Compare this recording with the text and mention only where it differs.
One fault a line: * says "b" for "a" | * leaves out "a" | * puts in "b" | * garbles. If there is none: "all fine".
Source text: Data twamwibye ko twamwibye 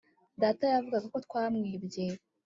* says "yavugaga" for "twamwibye"